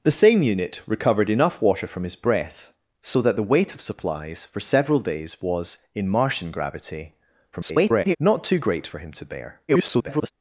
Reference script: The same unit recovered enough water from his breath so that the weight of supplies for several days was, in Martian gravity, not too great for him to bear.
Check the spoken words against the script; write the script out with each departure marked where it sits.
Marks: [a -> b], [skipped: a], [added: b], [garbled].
The same unit recovered enough water from his breath so that the weight of supplies for several days was, in Martian gravity, [garbled] not too great for him to bear. [garbled]